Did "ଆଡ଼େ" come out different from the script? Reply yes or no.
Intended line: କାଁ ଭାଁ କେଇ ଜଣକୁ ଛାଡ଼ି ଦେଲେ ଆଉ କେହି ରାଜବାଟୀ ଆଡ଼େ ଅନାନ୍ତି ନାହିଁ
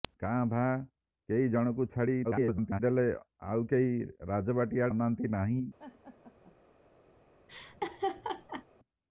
yes